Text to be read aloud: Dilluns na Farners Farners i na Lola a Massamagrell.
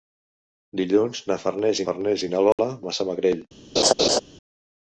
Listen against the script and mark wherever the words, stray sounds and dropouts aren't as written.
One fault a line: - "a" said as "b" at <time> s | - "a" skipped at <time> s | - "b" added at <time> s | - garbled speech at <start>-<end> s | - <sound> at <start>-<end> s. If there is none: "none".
- dropout at 2.5-2.6 s
- laugh at 3.8-4.2 s